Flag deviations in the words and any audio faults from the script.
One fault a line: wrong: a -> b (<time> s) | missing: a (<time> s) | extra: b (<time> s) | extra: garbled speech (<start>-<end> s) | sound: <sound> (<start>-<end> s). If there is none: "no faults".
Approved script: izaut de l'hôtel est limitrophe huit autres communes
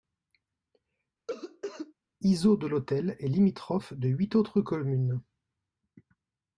sound: cough (1.3-1.9 s)
extra: de (3.9 s)